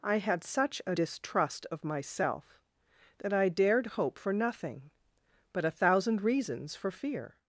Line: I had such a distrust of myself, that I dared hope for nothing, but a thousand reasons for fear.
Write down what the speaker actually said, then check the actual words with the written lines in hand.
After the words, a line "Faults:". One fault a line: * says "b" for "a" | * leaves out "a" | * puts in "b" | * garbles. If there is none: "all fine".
I had such a distrust of myself, that I dared hope for nothing, but a thousand reasons for fear.
Faults:
all fine